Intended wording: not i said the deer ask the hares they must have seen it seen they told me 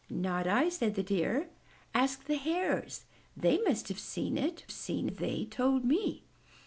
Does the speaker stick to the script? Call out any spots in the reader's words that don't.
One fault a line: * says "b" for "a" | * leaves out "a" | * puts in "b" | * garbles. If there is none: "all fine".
all fine